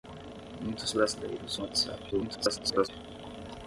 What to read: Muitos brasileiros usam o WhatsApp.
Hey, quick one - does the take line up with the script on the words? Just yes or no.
no